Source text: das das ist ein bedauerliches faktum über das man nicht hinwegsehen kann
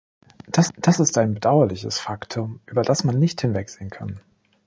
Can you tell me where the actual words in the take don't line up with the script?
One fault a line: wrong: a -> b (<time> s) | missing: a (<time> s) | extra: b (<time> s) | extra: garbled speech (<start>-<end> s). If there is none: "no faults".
no faults